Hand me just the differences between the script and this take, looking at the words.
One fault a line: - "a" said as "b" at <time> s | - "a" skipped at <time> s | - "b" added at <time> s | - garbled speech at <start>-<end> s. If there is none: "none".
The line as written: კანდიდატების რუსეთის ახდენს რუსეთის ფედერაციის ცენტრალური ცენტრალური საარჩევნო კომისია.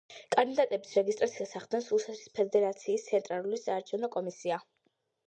- "რუსეთის" said as "რეგისტრაციას" at 1.0 s
- "ცენტრალური" skipped at 3.6 s